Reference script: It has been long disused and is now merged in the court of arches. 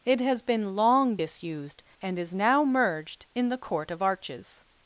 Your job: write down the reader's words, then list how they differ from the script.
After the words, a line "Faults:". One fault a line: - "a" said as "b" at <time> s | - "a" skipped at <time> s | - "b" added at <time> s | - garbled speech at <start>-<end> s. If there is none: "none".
It has been long disused and is now merged in the court of arches.
Faults:
none